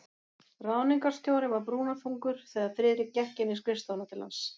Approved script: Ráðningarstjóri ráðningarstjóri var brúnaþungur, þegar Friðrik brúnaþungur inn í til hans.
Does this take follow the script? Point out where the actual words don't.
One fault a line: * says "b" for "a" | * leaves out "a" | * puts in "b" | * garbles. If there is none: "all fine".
* leaves out "ráðningarstjóri"
* says "gekk" for "brúnaþungur"
* puts in "skrifstofuna"